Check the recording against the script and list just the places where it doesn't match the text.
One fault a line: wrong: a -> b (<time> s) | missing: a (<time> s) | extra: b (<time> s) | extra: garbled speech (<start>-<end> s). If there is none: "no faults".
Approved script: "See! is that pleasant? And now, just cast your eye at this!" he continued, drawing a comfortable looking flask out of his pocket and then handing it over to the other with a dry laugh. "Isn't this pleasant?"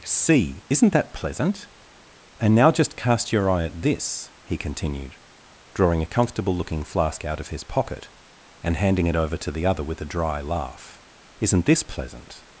wrong: is -> isn't (0.7 s)
missing: then (8.8 s)